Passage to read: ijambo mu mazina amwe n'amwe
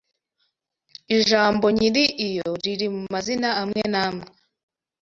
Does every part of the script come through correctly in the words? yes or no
no